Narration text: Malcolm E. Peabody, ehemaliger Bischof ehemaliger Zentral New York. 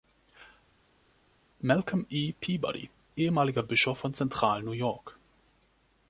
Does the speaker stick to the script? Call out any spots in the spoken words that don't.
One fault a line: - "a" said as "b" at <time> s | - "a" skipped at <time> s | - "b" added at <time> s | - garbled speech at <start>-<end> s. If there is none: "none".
- "ehemaliger" said as "von" at 4.0 s